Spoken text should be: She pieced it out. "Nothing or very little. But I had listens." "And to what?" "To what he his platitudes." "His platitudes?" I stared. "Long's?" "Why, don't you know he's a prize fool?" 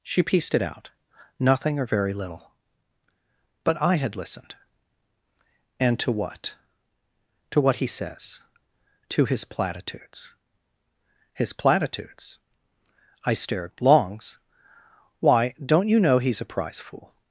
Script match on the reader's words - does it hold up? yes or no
no